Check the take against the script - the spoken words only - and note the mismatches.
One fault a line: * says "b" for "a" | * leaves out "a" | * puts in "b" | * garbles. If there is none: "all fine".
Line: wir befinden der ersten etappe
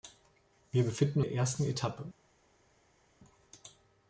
all fine